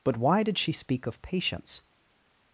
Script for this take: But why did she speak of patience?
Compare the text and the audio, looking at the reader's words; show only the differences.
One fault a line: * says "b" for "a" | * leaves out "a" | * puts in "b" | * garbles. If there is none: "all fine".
all fine